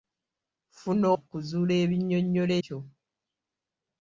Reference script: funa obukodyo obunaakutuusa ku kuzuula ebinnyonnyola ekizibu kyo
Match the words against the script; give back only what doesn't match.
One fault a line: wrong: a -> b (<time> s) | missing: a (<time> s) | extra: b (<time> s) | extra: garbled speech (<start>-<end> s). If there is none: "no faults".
missing: obukodyo obunaakutuusa (1.1 s)
missing: ekizibu (2.5 s)